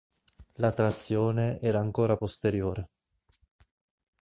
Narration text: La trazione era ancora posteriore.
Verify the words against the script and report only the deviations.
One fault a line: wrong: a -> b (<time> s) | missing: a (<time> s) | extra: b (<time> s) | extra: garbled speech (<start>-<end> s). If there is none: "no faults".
no faults